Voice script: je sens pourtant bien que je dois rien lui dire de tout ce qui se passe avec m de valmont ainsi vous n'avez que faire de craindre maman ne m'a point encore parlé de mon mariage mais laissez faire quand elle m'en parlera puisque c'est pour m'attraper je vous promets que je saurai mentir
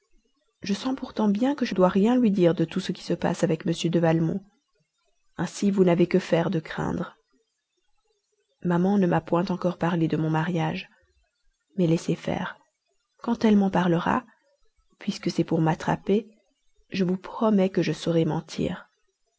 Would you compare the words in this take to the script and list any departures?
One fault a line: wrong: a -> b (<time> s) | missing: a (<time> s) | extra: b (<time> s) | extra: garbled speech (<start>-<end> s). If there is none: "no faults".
no faults